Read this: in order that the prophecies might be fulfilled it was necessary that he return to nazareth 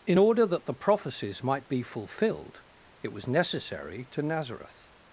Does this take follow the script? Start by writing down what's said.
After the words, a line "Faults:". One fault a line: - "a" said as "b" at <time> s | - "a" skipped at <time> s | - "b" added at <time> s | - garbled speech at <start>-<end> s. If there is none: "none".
in order that the prophecies might be fulfilled it was necessary to nazareth
Faults:
- "that he return" skipped at 4.0 s